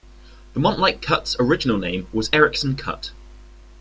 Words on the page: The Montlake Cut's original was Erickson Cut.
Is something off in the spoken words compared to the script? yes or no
yes